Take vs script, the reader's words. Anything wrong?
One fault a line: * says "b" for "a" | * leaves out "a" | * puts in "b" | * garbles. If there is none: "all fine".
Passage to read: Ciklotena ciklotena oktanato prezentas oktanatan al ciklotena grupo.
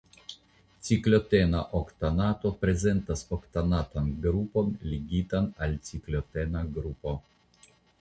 * leaves out "ciklotena"
* puts in "grupon ligitan"